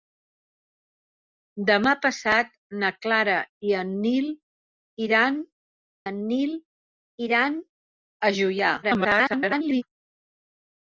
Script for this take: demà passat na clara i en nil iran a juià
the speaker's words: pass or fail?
fail